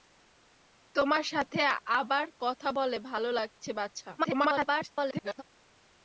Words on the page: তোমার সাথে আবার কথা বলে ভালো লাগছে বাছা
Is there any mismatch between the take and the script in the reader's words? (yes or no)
yes